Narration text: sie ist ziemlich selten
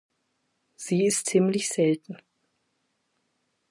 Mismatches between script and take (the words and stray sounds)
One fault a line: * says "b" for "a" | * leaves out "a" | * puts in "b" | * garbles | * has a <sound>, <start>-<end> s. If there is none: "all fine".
all fine